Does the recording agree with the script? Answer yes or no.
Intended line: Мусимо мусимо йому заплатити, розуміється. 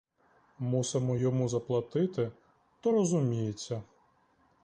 no